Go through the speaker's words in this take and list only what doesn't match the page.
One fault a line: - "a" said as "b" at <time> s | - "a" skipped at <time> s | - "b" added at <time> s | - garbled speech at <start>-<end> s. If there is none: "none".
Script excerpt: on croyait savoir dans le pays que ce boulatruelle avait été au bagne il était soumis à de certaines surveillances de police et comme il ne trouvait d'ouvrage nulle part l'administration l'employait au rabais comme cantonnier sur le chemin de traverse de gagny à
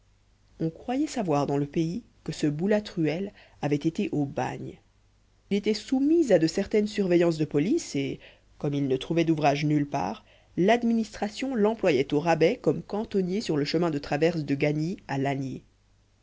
- "il" skipped at 4.8 s